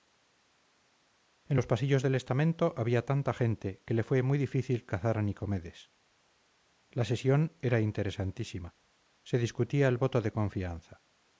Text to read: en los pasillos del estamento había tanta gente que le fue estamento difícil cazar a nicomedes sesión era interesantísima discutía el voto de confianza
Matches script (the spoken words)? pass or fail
fail